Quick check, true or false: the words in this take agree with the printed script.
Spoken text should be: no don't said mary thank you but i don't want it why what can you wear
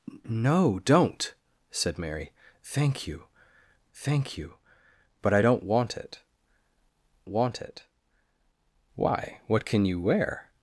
false